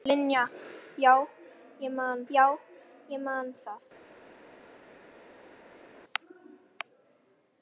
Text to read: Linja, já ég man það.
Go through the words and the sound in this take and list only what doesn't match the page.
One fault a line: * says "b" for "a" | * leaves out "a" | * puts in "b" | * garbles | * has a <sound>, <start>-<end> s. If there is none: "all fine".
* puts in "já ég man"